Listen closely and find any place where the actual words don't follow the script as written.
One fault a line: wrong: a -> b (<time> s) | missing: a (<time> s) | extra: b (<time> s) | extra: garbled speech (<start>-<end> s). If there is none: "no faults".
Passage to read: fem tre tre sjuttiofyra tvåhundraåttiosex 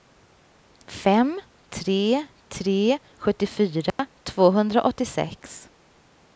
no faults